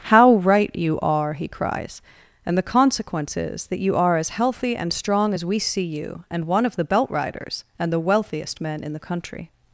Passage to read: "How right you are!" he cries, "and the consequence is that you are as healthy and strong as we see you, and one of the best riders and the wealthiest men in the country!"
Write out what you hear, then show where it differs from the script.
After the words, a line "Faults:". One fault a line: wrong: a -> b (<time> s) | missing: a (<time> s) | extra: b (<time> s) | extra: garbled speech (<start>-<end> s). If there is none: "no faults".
"How right you are!" he cries, "and the consequence is that you are as healthy and strong as we see you, and one of the belt riders and the wealthiest men in the country!"
Faults:
wrong: best -> belt (6.8 s)